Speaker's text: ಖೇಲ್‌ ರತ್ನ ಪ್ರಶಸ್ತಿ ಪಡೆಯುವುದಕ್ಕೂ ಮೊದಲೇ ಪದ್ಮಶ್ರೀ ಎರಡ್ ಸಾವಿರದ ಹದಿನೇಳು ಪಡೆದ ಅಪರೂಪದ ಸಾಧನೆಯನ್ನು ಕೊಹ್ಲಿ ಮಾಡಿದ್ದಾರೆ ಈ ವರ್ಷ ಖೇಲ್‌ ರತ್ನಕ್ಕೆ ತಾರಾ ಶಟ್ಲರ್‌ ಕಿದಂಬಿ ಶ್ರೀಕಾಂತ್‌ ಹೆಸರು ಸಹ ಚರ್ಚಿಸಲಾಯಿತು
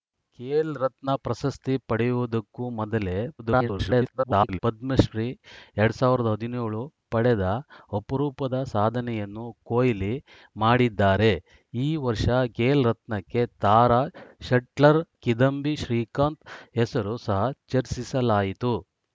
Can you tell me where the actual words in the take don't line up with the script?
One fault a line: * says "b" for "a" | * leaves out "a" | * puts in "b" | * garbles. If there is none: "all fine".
* garbles